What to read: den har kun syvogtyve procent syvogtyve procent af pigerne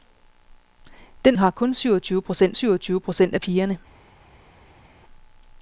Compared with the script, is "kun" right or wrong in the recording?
right